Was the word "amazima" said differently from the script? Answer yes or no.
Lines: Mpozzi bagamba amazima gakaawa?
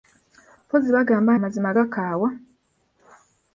no